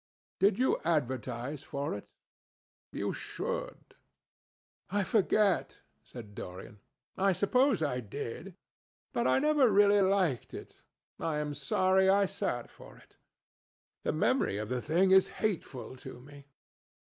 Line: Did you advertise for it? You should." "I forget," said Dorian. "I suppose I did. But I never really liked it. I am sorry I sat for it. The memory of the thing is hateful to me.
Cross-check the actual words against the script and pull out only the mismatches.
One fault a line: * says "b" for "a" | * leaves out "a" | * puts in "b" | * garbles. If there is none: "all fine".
all fine